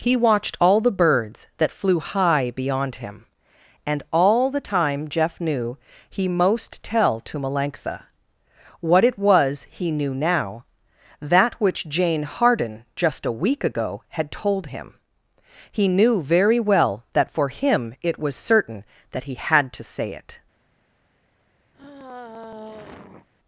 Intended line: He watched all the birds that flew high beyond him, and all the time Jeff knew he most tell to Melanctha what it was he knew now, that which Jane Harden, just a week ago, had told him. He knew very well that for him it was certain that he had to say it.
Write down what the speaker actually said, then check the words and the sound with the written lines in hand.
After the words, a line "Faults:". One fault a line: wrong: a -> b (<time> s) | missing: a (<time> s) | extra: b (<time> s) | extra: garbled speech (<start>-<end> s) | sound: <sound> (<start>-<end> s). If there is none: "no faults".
He watched all the birds that flew high beyond him, and all the time Jeff knew he most tell to Melanctha what it was he knew now, that which Jane Harden, just a week ago, had told him. He knew very well that for him it was certain that he had to say it.
Faults:
sound: sigh (21.7-23.3 s)